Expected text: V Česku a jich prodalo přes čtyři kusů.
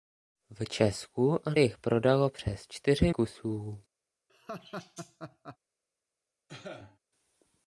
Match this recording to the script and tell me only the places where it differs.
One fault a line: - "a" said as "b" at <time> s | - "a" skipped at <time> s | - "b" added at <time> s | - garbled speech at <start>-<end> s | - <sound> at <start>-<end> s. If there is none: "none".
- laugh at 4.3-5.6 s
- cough at 6.5-7.0 s